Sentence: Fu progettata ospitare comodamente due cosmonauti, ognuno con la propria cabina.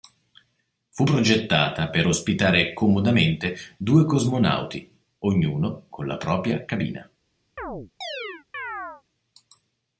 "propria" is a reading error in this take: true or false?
false